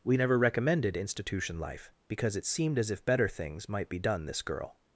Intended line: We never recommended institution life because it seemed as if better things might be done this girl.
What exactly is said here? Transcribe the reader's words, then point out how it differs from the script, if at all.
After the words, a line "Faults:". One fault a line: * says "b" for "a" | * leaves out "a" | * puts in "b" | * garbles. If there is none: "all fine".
We never recommended institution life because it seemed as if better things might be done this girl.
Faults:
all fine